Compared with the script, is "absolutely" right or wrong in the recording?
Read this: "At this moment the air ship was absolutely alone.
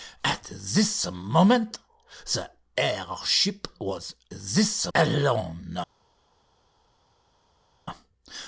wrong